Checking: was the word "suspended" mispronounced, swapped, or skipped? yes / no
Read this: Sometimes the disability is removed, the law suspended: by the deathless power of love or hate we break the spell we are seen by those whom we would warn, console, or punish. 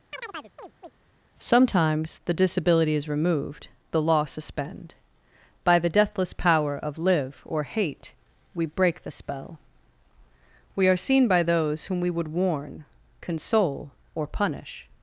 yes